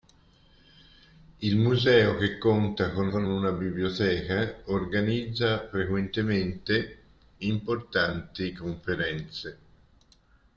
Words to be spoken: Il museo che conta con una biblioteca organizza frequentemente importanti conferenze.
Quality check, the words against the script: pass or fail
fail